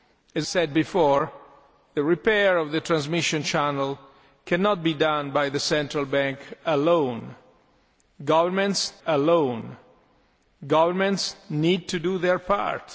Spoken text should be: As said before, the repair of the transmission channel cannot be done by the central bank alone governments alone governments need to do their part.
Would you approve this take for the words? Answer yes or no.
yes